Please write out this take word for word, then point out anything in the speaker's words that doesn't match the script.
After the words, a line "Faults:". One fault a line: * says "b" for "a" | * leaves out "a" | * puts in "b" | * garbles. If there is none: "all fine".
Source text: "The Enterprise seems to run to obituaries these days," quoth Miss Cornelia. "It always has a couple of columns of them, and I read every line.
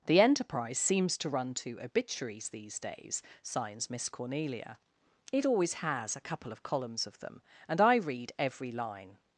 "The Enterprise seems to run to obituaries these days," signs Miss Cornelia. "It always has a couple of columns of them, and I read every line.
Faults:
* says "signs" for "quoth"